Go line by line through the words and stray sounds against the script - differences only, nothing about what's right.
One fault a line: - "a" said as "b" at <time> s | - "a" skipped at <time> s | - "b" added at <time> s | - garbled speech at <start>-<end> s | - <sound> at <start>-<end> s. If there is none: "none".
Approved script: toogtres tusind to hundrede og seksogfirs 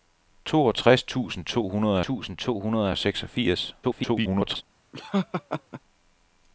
- "tusind to hundrede" added at 2.0 s
- garbled speech at 3.8-4.6 s
- laugh at 4.9-5.8 s